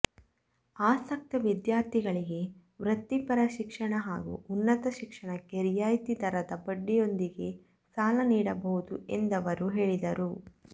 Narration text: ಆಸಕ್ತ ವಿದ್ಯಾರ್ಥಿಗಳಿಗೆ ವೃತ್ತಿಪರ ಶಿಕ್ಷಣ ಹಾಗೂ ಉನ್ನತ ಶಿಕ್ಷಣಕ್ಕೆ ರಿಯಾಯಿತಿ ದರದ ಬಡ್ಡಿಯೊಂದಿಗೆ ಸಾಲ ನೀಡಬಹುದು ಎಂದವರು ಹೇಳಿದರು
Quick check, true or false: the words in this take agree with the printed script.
true